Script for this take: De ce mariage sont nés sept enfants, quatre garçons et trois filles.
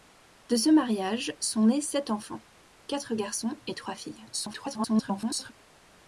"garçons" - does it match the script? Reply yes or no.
yes